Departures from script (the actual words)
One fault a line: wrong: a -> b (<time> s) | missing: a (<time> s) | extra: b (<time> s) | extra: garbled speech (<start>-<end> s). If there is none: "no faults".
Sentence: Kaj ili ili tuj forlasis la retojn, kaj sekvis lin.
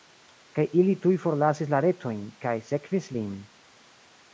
missing: ili (0.9 s)